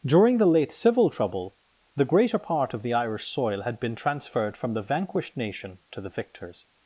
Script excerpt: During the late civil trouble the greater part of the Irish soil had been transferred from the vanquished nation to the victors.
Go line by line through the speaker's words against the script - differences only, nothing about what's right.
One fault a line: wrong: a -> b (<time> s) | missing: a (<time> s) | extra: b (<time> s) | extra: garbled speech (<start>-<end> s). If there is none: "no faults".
no faults